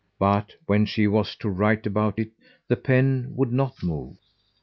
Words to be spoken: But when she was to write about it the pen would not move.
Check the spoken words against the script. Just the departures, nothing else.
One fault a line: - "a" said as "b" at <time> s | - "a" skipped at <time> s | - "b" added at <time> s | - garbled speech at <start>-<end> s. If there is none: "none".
none